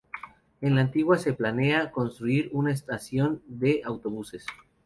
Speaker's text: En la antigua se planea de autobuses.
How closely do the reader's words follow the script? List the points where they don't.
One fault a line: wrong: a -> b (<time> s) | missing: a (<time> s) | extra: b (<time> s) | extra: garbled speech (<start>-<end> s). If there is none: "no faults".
extra: construir una estación (1.9 s)